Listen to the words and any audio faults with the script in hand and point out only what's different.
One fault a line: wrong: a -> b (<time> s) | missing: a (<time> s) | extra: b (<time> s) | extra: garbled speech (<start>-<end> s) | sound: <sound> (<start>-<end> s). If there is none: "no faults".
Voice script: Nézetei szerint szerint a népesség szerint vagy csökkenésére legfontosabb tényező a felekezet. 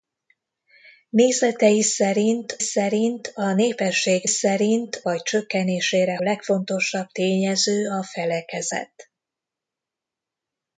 no faults